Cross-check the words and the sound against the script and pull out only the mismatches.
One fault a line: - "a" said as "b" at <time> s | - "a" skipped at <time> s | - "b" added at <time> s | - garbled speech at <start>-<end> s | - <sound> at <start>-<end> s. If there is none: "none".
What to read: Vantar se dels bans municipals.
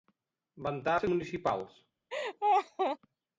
- "dels bans" skipped at 1.1 s
- laugh at 2.1-3.0 s